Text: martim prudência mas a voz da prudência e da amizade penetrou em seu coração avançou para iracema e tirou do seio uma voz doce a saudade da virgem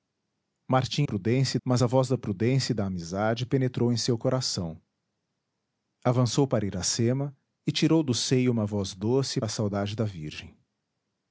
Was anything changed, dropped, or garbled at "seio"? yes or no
no